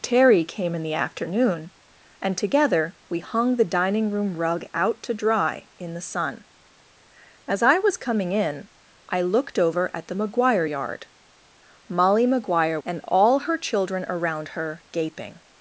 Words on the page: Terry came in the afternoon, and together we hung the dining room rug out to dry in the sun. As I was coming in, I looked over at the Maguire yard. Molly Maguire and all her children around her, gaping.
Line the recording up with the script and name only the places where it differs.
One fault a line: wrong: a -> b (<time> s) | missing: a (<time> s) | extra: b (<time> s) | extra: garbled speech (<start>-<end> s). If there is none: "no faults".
no faults